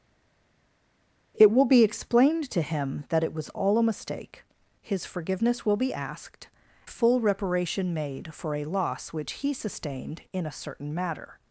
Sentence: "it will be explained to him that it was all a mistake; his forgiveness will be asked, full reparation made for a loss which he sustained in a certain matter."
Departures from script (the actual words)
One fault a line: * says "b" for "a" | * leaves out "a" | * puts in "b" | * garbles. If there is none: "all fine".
all fine